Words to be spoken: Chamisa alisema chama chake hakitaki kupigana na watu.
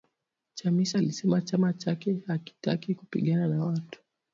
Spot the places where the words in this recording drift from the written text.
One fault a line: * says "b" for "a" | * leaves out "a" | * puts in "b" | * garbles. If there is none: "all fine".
all fine